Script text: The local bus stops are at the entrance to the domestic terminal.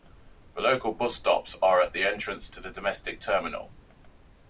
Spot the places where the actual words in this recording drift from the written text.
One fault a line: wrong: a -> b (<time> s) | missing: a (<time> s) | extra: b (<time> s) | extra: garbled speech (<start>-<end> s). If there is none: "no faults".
no faults